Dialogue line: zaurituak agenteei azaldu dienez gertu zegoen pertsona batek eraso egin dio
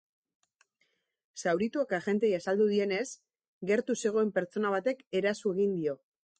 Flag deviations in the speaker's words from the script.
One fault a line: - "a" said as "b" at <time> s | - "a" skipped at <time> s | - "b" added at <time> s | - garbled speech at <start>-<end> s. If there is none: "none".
none